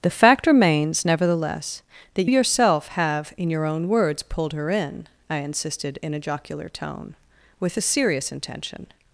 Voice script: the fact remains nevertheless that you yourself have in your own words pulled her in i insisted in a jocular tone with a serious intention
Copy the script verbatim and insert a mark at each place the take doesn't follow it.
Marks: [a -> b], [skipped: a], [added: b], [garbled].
the fact remains nevertheless that [skipped: you] yourself have in your own words pulled her in i insisted in a jocular tone with a serious intention